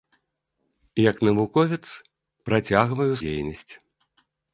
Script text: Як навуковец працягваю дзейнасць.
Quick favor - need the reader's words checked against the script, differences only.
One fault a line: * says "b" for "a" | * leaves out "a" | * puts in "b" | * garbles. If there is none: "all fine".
all fine